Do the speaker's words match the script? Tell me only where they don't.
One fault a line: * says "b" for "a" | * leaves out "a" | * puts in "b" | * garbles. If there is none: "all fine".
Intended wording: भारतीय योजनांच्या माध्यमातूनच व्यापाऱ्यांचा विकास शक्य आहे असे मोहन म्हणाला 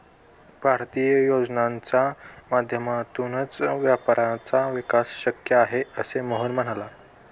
all fine